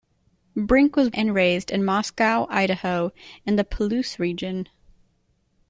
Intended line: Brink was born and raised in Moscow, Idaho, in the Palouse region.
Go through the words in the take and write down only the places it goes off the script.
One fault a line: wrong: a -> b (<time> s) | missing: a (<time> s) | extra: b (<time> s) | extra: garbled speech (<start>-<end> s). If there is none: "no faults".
missing: born (1.1 s)